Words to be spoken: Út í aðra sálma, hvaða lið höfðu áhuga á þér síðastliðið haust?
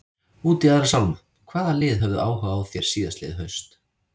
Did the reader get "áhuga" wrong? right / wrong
right